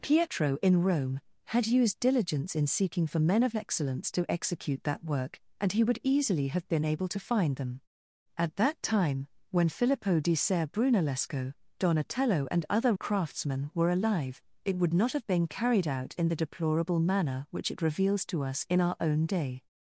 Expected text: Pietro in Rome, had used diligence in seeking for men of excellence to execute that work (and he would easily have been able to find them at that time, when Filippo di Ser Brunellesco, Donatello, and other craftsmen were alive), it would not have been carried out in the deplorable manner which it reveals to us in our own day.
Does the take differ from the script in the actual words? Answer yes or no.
no